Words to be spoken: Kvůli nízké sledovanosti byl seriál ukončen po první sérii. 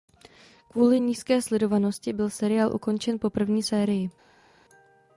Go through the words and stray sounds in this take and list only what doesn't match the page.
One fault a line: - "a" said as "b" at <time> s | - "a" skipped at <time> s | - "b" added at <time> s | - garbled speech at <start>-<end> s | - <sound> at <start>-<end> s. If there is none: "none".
none